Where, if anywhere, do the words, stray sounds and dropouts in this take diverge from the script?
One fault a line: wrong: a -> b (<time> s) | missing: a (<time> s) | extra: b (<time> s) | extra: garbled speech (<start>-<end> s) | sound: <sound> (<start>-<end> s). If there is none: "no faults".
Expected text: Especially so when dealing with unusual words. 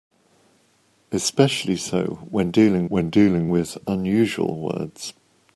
extra: when dealing (2.9 s)